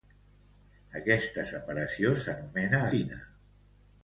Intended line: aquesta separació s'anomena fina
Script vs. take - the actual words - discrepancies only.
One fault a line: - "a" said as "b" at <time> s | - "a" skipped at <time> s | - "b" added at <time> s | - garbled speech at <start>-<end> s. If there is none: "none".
none